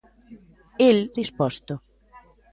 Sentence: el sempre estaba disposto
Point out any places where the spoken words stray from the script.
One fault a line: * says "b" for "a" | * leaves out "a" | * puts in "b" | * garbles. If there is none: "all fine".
* leaves out "sempre estaba"